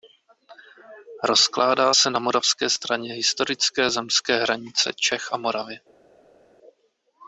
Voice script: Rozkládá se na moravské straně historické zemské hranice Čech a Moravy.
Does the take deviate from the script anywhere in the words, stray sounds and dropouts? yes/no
no